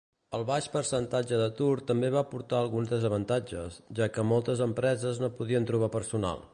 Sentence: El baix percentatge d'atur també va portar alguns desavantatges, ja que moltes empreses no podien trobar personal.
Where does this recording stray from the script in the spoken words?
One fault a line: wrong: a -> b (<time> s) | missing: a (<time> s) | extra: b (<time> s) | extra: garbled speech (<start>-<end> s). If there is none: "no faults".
no faults